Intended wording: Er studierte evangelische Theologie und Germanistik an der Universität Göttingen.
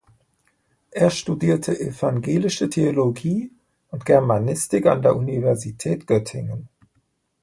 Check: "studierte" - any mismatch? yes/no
no